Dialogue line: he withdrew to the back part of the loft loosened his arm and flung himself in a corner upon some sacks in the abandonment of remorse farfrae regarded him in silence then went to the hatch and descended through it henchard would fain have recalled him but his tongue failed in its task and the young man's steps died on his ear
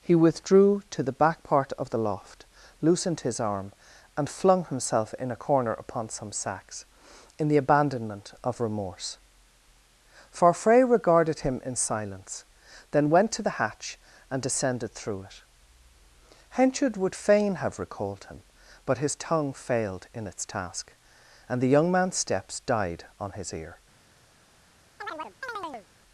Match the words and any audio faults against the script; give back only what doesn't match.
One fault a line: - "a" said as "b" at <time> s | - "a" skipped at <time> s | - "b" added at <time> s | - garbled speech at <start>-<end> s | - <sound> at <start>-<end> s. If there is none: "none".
- chirp at 25.0-25.9 s